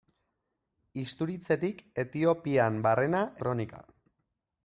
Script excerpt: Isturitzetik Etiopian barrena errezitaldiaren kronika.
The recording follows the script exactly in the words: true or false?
false